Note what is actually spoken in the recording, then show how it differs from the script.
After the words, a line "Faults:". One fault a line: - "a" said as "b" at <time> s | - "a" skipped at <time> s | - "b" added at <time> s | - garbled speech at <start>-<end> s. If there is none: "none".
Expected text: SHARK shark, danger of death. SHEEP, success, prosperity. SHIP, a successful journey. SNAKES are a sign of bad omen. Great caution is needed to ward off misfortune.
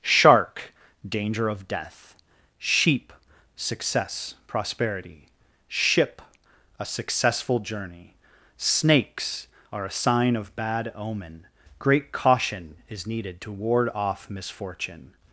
SHARK, danger of death. SHEEP, success, prosperity. SHIP, a successful journey. SNAKES are a sign of bad omen. Great caution is needed to ward off misfortune.
Faults:
- "shark" skipped at 0.7 s